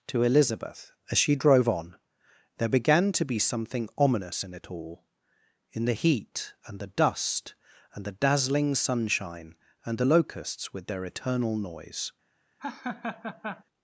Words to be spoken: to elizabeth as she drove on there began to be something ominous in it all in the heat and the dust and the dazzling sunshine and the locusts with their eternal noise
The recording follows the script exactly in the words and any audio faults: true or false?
false